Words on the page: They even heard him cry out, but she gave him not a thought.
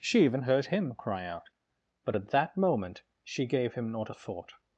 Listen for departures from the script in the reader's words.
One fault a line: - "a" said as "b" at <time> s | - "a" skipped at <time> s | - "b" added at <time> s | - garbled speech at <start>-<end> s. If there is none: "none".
- "They" said as "She" at 0.0 s
- "at that moment" added at 2.1 s